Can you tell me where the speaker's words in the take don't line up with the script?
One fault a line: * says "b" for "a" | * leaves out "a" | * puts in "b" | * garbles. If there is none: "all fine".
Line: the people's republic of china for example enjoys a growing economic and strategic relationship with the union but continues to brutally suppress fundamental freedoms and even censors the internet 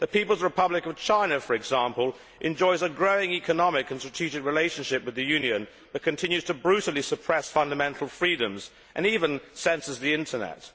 all fine